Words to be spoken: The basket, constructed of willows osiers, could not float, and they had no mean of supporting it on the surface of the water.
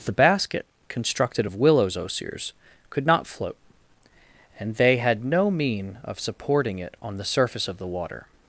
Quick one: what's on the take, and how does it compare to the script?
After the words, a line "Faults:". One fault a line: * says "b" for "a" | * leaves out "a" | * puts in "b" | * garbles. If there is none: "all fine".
The basket, constructed of willows osiers, could not float, and they had no mean of supporting it on the surface of the water.
Faults:
all fine